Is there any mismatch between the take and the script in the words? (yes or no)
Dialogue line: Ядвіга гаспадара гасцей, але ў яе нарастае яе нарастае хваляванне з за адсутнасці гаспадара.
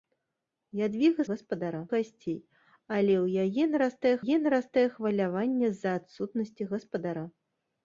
no